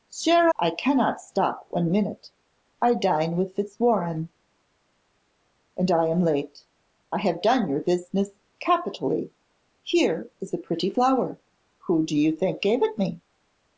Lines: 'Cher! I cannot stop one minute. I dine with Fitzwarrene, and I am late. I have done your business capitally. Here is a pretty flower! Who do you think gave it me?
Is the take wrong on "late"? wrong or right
right